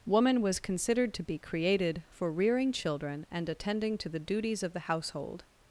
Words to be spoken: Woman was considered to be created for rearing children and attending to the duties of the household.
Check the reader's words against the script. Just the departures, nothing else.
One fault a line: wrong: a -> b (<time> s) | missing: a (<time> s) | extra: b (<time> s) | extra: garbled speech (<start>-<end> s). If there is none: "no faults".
no faults